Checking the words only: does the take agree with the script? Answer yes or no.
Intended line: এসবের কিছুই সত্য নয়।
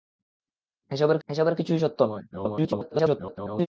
no